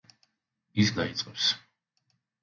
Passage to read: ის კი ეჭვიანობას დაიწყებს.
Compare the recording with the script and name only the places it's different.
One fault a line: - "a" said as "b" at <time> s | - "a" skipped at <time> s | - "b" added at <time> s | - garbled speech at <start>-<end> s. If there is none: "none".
- "კი ეჭვიანობას" skipped at 0.9 s